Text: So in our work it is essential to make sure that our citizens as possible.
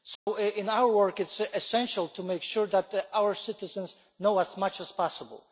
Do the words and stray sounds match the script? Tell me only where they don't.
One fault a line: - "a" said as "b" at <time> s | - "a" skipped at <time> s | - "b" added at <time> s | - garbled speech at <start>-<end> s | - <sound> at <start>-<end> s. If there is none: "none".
- dropout at 0.2-0.3 s
- "know as much" added at 4.2 s